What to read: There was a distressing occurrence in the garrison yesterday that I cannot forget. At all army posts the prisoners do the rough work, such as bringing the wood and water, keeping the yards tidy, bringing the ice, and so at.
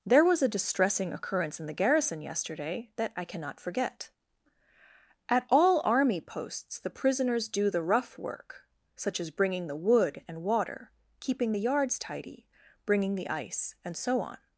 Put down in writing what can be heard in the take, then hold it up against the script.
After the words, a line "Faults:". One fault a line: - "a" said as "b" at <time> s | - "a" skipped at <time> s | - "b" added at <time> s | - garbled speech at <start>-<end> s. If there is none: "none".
There was a distressing occurrence in the garrison yesterday that I cannot forget. At all army posts the prisoners do the rough work, such as bringing the wood and water, keeping the yards tidy, bringing the ice, and so on.
Faults:
- "at" said as "on" at 14.2 s